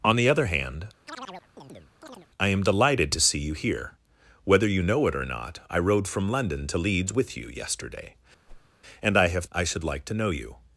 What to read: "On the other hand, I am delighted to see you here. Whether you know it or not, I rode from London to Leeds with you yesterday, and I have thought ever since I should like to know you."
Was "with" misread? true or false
false